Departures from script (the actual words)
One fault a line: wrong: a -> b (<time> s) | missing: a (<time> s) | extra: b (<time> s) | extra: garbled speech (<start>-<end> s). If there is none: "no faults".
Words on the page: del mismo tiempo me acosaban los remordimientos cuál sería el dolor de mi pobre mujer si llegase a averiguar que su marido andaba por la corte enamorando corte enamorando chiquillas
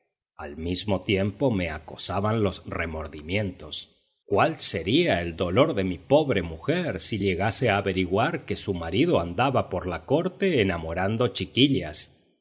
wrong: del -> al (0.3 s)
missing: corte enamorando (11.3 s)